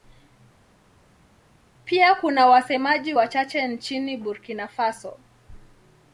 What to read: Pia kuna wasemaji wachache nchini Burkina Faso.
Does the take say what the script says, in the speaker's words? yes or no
yes